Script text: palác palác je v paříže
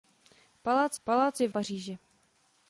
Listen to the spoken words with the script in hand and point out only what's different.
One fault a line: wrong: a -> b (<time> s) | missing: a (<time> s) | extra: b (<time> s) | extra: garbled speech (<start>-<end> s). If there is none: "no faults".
no faults